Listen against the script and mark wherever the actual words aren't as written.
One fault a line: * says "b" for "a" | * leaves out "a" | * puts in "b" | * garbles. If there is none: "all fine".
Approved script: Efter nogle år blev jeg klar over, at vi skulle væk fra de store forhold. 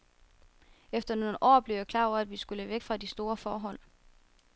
all fine